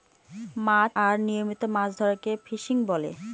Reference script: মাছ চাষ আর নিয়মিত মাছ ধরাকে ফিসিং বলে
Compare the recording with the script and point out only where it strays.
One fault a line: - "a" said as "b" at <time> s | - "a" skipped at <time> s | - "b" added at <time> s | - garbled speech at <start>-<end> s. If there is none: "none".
- "চাষ" skipped at 0.9 s